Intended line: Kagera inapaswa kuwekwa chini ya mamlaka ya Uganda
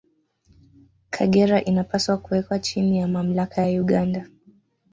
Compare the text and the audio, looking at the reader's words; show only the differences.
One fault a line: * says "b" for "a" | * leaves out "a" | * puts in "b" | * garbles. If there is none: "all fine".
all fine